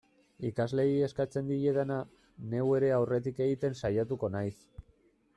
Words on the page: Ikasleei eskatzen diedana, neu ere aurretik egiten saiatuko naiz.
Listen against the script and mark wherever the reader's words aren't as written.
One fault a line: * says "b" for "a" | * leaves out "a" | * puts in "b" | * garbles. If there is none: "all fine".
all fine